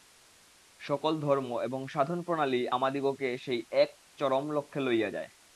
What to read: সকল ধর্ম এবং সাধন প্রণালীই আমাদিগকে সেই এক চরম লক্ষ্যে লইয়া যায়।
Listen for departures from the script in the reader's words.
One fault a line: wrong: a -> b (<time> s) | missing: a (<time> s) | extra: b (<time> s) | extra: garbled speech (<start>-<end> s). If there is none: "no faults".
no faults